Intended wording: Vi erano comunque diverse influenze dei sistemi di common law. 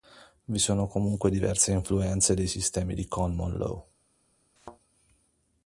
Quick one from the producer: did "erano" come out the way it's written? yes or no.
no